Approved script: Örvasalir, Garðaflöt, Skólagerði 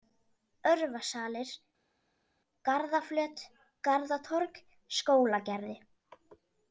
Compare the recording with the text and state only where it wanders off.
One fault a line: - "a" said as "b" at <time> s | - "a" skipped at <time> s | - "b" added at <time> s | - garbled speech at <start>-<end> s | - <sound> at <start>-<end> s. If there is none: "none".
- "Garðatorg" added at 3.9 s